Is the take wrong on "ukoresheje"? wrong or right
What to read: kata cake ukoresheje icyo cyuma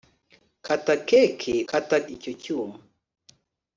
wrong